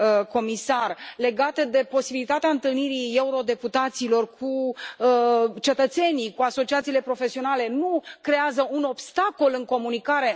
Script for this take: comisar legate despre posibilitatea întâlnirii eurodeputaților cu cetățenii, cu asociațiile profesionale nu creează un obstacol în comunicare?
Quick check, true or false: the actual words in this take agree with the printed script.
false